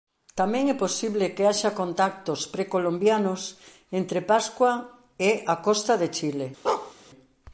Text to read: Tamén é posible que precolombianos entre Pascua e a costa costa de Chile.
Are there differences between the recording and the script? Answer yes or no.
yes